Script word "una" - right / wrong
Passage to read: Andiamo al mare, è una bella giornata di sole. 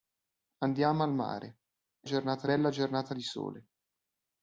wrong